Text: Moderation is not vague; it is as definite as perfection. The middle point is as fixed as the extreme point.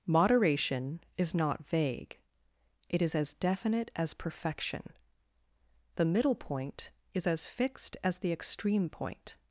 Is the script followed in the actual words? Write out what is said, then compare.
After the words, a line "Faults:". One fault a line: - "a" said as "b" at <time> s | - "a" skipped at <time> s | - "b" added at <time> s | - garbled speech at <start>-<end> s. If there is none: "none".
Moderation is not vague; it is as definite as perfection. The middle point is as fixed as the extreme point.
Faults:
none